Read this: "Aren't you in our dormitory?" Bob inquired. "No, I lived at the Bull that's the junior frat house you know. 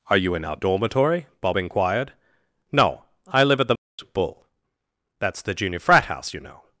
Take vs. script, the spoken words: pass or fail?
fail